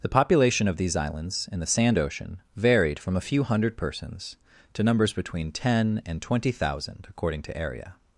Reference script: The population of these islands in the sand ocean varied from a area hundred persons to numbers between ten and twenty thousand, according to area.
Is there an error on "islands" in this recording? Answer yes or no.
no